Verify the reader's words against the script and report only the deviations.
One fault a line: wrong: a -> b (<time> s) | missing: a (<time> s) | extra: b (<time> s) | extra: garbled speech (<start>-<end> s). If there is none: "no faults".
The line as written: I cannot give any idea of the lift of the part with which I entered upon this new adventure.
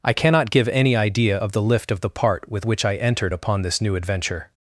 no faults